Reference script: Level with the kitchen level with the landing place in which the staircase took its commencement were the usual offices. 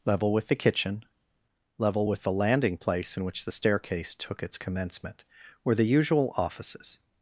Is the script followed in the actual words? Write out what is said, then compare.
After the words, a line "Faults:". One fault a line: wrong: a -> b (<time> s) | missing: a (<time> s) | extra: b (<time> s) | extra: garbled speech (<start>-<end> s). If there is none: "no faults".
Level with the kitchen level with the landing place in which the staircase took its commencement were the usual offices.
Faults:
no faults